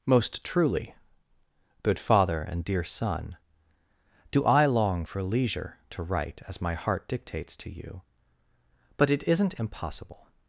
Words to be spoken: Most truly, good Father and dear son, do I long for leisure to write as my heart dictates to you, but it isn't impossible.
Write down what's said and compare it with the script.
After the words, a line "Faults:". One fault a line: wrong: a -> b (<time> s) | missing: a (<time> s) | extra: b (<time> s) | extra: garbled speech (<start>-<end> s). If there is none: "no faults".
Most truly, good Father and dear son, do I long for leisure to write as my heart dictates to you, but it isn't impossible.
Faults:
no faults